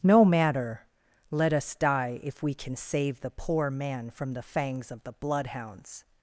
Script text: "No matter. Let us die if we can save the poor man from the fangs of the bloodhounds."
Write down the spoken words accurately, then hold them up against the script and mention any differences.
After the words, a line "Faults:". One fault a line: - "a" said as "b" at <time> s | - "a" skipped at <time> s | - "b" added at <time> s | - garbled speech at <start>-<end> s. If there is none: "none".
"No matter. Let us die if we can save the poor man from the fangs of the bloodhounds."
Faults:
none